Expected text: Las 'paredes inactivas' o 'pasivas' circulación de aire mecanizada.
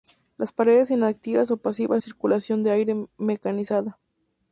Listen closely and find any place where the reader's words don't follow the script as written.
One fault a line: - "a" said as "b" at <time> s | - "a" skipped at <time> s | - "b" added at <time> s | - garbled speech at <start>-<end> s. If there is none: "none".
none